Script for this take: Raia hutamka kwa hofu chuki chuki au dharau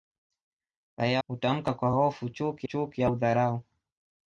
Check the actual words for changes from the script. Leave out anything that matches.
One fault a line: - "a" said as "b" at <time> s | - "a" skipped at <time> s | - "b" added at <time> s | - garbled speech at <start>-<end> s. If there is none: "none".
none